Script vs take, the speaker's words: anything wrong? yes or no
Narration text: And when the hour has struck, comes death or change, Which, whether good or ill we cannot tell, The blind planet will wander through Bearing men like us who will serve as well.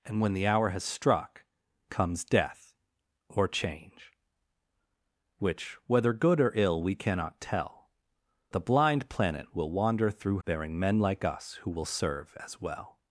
no